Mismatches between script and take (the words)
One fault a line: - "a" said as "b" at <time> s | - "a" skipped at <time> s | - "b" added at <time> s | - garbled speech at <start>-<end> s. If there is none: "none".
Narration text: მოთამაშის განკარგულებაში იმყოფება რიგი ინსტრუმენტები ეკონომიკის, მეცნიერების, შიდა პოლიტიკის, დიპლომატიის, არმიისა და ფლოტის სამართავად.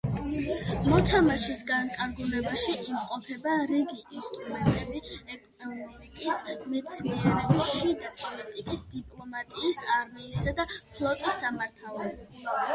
none